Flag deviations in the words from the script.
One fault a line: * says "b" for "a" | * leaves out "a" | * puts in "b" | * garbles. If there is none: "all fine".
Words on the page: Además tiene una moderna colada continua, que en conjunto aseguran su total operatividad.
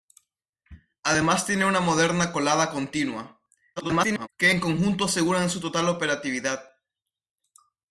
* garbles